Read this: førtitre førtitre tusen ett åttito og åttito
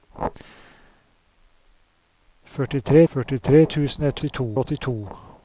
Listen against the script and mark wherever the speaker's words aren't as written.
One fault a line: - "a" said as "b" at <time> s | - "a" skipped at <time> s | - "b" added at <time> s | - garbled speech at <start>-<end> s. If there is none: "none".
none